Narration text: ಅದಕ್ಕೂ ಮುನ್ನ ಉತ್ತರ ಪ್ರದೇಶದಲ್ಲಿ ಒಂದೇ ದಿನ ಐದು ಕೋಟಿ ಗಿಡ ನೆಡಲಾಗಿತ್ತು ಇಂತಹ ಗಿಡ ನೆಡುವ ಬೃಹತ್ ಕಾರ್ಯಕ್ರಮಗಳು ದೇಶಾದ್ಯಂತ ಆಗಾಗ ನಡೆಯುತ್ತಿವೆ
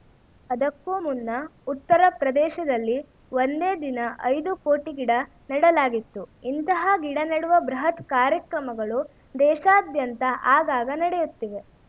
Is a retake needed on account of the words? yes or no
no